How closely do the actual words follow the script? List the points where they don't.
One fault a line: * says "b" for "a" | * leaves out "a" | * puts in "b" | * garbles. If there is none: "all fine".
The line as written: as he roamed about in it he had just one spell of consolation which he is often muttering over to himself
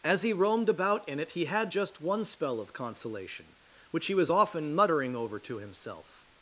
* says "was" for "is"